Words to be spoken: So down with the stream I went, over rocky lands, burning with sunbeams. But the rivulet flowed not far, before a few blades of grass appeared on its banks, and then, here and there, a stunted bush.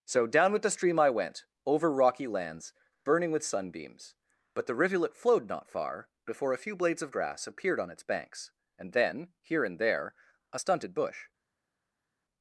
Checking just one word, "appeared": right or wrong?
right